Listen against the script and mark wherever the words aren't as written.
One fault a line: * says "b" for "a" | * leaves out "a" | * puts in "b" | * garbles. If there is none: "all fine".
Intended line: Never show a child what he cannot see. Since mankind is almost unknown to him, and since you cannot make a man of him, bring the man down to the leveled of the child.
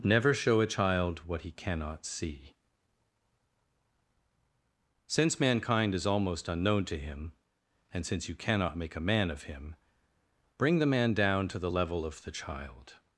* says "level" for "leveled"